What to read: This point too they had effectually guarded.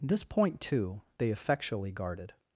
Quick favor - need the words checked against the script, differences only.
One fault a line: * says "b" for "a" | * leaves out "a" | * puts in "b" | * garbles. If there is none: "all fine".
* leaves out "had"